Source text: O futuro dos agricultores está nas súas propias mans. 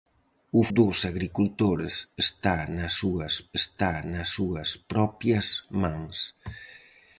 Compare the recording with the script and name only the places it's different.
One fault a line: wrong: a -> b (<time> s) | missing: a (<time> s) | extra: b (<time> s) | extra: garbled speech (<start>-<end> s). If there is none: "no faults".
missing: futuro (0.6 s)
extra: está nas súas (3.6 s)